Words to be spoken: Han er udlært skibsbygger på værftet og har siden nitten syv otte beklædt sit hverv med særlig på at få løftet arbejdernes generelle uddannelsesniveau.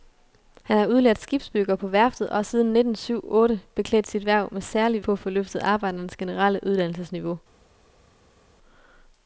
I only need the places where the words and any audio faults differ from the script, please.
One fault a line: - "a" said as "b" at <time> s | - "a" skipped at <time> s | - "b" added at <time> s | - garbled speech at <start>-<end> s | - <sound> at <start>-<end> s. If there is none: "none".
none